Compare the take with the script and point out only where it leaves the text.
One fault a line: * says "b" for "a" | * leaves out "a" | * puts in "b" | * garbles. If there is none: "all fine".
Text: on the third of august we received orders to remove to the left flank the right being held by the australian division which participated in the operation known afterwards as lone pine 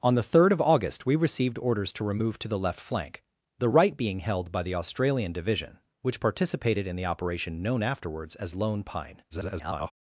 * garbles